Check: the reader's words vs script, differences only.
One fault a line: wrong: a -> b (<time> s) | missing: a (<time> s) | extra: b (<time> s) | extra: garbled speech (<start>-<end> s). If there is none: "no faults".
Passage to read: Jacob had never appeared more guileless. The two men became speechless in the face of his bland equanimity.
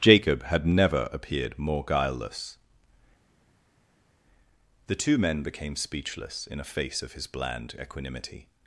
wrong: the -> a (6.6 s)